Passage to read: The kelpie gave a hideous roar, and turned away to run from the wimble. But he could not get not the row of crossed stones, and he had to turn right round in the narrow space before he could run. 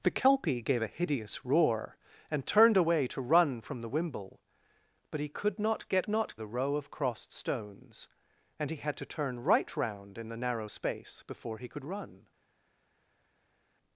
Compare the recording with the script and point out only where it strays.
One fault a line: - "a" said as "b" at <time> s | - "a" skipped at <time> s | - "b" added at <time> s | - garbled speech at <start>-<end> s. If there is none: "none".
none